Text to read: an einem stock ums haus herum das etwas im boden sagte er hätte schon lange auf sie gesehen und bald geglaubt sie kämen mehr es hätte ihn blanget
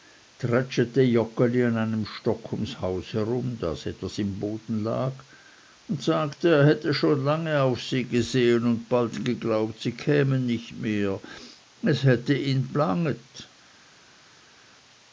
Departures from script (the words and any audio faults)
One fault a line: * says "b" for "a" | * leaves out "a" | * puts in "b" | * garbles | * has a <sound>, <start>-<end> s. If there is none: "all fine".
* puts in "lag und"
* puts in "nicht"